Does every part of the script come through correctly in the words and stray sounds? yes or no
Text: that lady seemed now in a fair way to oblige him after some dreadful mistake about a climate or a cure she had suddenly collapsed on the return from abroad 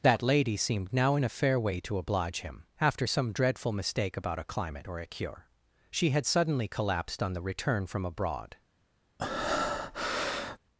no